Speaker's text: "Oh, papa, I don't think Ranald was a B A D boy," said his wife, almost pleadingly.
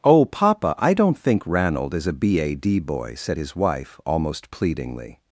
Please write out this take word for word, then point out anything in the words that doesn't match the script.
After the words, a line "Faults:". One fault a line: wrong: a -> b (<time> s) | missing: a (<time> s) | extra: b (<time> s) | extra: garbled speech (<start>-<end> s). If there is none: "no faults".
"Oh, papa, I don't think Ranald is a B A D boy," said his wife, almost pleadingly.
Faults:
wrong: was -> is (1.9 s)